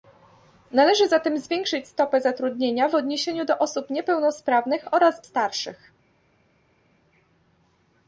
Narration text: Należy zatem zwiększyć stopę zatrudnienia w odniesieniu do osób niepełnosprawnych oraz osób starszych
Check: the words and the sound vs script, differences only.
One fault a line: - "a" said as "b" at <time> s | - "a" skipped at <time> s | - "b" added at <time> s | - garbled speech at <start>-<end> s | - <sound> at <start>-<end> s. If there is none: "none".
- "osób" skipped at 5.2 s